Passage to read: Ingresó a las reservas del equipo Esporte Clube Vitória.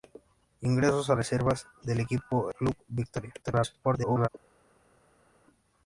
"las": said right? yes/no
no